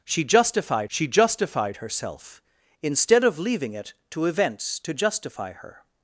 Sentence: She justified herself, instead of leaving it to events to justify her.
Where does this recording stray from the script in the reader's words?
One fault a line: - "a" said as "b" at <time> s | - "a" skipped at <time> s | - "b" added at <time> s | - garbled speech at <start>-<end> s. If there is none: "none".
- "she justified" added at 0.9 s